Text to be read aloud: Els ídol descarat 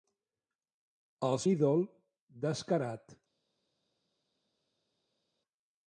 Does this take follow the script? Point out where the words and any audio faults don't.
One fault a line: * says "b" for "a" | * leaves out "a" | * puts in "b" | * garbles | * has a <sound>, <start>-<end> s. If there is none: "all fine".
all fine